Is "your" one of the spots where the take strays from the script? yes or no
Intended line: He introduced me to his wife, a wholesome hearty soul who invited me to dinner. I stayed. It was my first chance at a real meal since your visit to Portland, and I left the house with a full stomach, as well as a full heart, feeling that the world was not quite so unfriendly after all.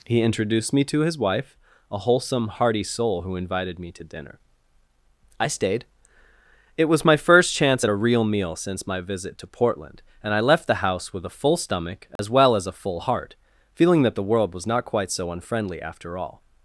yes